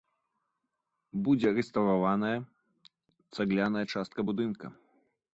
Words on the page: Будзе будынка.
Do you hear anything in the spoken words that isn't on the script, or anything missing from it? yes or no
yes